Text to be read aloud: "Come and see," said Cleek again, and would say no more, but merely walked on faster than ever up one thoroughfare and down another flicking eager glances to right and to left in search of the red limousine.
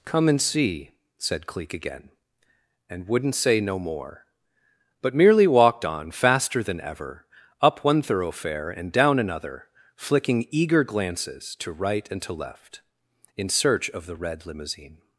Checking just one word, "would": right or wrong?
wrong